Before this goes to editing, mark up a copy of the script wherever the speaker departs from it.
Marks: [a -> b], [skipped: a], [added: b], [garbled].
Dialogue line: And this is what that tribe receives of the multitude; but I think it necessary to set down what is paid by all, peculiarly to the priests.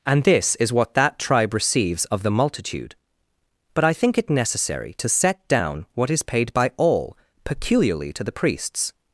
And this is what that tribe receives of the multitude; but I think it necessary to set down what is paid by all, peculiarly to the priests.